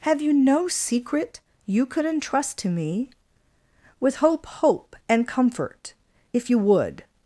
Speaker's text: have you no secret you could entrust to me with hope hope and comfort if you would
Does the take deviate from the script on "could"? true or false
false